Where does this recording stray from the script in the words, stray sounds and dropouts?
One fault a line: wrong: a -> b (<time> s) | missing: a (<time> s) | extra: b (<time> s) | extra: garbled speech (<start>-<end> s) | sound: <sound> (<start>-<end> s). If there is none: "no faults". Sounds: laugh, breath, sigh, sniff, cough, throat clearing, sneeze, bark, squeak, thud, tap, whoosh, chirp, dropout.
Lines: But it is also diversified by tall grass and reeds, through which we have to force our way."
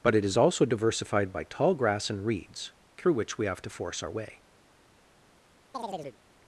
sound: chirp (5.7-6.2 s)